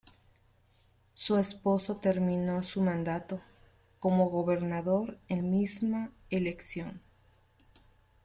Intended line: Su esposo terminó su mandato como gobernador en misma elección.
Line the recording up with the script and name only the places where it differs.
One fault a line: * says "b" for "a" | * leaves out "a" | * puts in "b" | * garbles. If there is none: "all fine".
all fine